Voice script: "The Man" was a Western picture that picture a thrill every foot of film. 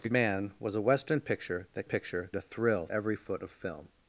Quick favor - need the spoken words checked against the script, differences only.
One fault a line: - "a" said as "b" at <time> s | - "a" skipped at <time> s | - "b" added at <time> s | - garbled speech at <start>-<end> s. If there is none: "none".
none